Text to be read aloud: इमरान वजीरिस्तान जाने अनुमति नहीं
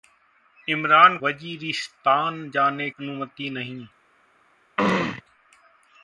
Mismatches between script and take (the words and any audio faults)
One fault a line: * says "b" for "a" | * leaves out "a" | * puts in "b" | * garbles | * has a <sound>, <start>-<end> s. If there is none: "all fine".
* has a throat clearing, 4.8-5.2 s